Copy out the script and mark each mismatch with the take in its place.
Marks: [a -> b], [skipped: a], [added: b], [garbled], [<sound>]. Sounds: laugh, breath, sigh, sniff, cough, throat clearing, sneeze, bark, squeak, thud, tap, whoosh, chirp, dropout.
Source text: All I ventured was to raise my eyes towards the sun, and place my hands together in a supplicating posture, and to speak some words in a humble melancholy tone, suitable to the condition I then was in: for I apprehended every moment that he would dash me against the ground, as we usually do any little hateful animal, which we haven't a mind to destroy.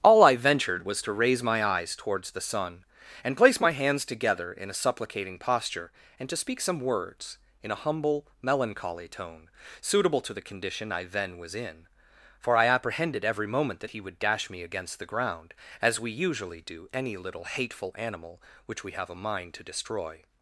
All I ventured was to raise my eyes towards the sun, and place my hands together in a supplicating posture, and to speak some words in a humble melancholy tone, suitable to the condition I then was in: for I apprehended every moment that he would dash me against the ground, as we usually do any little hateful animal, which we [haven't -> have] a mind to destroy.